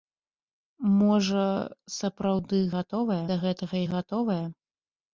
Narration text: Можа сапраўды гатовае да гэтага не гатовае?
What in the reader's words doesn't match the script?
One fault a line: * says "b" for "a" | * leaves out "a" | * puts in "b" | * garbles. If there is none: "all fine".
all fine